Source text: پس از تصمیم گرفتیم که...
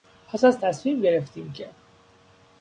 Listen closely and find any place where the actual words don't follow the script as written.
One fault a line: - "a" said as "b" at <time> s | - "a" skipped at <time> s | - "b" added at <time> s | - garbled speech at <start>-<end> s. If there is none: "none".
none